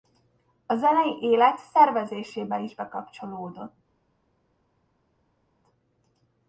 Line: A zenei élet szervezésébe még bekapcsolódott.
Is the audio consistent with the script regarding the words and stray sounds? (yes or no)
no